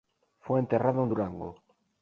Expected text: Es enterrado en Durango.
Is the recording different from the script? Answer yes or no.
yes